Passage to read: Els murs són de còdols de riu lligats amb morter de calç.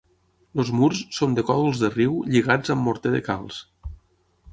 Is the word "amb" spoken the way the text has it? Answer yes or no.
yes